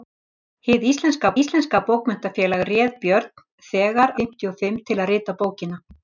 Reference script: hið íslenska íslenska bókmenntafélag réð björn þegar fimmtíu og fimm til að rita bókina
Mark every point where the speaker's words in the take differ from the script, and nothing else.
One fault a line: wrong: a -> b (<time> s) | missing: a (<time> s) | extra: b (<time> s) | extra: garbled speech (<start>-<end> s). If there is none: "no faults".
no faults